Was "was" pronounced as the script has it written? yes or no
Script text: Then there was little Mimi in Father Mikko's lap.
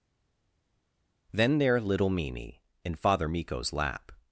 no